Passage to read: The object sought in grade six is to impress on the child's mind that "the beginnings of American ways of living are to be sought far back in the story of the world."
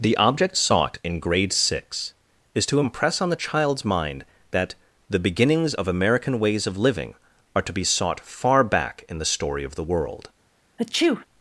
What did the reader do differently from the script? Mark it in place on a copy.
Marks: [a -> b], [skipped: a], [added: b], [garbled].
The object sought in grade six is to impress on the child's mind that "the beginnings of American ways of living are to be sought far back in the story of the world."